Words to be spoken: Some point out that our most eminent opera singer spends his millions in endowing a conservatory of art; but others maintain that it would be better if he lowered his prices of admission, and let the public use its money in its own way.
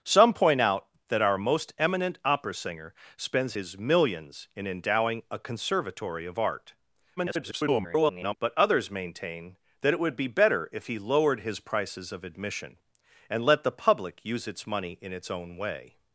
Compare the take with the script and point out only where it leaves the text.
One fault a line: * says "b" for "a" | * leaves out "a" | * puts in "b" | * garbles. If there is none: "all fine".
* garbles